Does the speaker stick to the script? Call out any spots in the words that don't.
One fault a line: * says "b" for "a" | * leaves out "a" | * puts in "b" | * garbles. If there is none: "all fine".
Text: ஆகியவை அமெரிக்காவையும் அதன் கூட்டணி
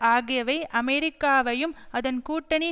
all fine